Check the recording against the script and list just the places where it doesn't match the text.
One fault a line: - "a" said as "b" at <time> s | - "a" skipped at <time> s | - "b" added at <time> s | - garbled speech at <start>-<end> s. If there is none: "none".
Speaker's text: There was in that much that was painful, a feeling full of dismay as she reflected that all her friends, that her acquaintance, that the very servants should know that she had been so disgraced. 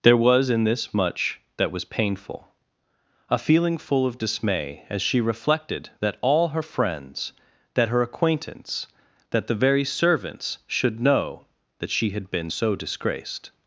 - "that" said as "this" at 0.6 s